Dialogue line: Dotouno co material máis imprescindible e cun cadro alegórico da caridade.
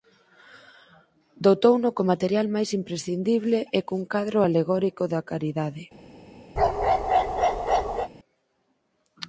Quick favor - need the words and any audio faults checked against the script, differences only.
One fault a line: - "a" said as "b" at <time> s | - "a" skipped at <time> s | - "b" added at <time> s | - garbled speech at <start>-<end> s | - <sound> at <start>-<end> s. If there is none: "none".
- bark at 6.6-8.1 s